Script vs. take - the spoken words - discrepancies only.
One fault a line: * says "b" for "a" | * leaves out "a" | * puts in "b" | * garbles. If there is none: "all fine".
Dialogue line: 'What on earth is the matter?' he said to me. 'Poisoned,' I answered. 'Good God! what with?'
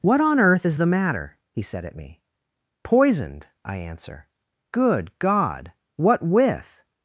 * says "at" for "to"
* says "answer" for "answered"